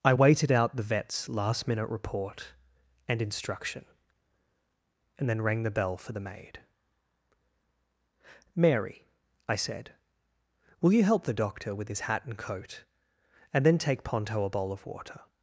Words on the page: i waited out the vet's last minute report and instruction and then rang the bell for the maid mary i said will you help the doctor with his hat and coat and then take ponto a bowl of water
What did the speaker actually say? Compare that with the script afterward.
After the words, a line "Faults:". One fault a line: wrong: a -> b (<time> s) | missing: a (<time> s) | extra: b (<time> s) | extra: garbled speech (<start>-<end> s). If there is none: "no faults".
i waited out the vet's last minute report and instruction and then rang the bell for the maid mary i said will you help the doctor with his hat and coat and then take ponto a bowl of water
Faults:
no faults